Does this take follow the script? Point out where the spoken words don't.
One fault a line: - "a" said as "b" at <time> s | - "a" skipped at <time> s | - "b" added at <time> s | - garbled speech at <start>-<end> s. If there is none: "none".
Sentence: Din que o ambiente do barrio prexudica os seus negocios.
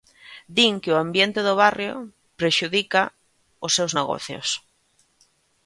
none